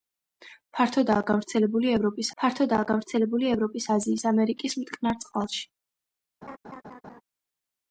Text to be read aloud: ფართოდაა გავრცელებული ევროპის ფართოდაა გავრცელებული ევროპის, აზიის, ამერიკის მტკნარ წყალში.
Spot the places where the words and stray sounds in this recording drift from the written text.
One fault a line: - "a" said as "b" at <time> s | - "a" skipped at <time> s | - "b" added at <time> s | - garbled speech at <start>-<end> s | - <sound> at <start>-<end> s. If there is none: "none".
- laugh at 6.4-7.2 s